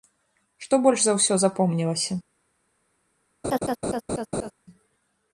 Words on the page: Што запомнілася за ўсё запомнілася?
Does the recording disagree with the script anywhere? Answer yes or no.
yes